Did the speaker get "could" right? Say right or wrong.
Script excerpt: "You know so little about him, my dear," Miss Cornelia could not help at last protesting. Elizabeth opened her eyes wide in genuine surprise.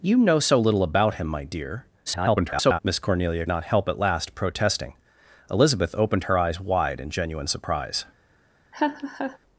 wrong